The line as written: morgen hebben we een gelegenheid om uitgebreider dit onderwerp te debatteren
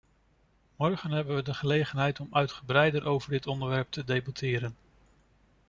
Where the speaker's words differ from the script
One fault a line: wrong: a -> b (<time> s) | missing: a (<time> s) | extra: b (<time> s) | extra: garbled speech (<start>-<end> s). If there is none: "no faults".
wrong: een -> de (1.4 s)
extra: over (3.0 s)